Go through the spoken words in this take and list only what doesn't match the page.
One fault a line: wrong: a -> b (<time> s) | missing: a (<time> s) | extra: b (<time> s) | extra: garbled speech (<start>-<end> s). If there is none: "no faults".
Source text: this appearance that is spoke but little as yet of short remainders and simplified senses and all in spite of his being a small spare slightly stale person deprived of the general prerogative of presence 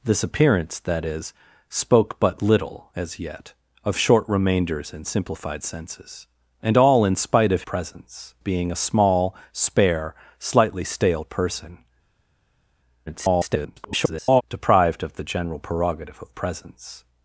wrong: his -> presence (7.6 s)
extra: garbled speech (13.1-14.4 s)